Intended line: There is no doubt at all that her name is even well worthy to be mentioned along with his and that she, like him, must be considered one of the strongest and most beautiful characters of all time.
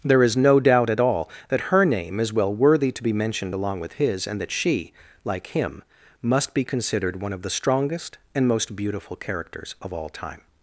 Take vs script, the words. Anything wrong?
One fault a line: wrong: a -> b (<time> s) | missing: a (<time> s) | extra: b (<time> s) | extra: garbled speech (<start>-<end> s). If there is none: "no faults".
missing: even (2.3 s)